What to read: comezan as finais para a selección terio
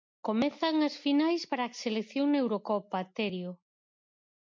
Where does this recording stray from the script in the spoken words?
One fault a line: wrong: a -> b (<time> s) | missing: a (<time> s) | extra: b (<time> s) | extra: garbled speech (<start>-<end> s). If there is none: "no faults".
extra: na eurocopa (2.3 s)